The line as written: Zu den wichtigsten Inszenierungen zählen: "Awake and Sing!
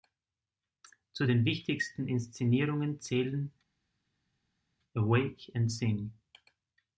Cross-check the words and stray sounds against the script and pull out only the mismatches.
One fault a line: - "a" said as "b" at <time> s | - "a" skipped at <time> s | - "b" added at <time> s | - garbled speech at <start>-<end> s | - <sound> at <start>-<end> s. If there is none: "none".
none